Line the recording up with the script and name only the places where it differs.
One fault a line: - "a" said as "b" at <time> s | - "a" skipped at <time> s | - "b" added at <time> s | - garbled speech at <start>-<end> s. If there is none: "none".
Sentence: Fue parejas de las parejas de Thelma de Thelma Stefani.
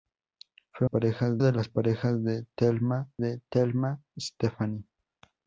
none